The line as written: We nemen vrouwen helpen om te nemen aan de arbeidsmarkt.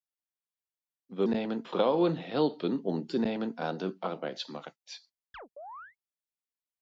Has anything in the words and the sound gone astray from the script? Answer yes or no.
yes